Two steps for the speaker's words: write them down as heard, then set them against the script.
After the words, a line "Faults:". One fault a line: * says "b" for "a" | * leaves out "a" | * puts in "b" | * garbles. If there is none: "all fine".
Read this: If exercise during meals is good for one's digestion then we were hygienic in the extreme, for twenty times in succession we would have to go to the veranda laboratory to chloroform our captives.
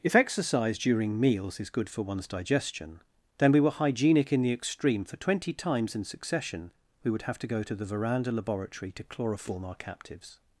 If exercise during meals is good for one's digestion then we were hygienic in the extreme, for twenty times in succession we would have to go to the veranda laboratory to chloroform our captives.
Faults:
all fine